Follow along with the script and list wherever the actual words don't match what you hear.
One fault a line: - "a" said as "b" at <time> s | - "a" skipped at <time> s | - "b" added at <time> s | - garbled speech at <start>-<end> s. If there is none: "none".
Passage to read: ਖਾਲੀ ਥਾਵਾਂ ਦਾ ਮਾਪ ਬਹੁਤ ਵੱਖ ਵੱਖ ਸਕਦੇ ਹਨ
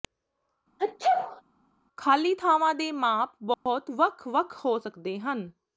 - "ਦਾ" said as "ਦੇ" at 2.7 s
- "ਹੋ" added at 4.6 s